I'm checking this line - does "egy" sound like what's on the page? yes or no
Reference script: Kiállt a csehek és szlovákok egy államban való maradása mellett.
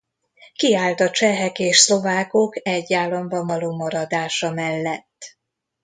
yes